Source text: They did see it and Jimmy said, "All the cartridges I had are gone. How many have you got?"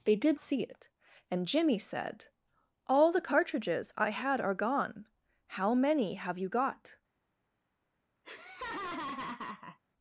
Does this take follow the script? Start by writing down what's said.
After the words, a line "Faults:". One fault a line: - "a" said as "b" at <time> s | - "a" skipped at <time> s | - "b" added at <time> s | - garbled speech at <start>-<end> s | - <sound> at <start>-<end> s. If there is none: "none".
They did see it and Jimmy said, "All the cartridges I had are gone. How many have you got?"
Faults:
- laugh at 8.2-9.8 s